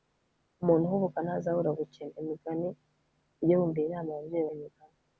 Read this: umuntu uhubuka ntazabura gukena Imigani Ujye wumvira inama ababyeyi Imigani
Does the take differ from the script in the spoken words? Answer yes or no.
no